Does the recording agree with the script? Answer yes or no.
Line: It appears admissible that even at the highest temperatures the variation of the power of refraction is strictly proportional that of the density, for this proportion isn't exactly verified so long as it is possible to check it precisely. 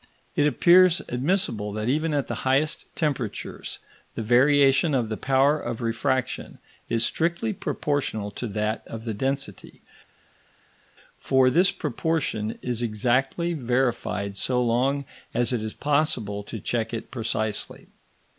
no